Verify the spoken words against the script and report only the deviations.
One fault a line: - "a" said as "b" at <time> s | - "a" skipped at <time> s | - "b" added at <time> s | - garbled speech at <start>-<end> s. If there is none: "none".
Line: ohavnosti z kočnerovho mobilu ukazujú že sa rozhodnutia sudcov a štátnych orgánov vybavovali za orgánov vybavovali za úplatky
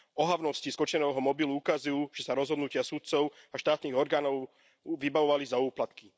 - "orgánov vybavovali za" skipped at 5.6 s